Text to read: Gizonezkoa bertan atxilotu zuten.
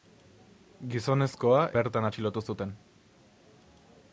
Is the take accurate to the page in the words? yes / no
yes